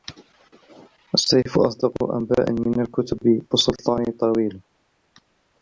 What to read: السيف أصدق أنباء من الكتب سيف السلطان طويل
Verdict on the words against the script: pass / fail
fail